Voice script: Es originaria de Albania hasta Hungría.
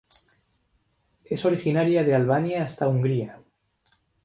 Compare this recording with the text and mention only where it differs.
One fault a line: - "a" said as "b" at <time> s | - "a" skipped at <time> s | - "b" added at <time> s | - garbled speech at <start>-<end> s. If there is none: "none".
none